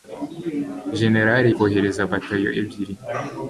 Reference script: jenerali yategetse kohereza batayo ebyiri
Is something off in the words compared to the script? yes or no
yes